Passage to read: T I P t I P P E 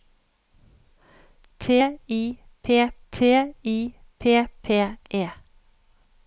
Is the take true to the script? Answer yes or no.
yes